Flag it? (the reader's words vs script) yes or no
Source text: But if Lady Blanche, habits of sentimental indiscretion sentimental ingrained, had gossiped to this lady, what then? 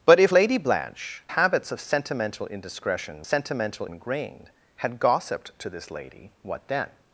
no